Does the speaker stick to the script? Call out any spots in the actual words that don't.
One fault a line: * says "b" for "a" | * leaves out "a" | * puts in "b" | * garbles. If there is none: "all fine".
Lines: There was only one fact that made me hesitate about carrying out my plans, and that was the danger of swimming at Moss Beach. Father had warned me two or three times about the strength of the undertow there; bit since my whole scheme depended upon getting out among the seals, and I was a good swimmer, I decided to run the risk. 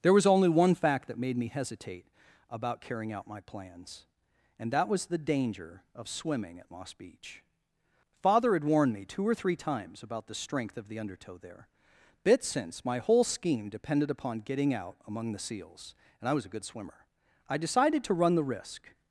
all fine